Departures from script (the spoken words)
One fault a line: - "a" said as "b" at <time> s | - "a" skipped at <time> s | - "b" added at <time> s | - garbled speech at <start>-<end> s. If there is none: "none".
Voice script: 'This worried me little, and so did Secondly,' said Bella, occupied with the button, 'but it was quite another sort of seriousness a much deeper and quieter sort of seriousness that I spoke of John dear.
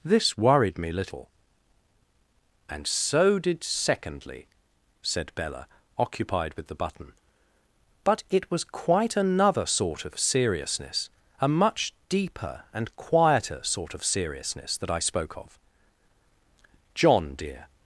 none